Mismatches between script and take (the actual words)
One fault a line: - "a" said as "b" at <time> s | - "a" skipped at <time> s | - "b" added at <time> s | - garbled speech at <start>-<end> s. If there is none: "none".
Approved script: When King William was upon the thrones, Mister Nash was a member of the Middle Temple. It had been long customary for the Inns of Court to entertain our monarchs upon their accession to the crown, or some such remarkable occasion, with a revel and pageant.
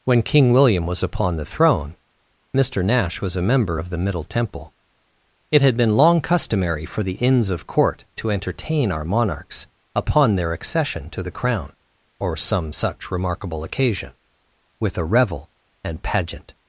- "thrones" said as "throne" at 1.4 s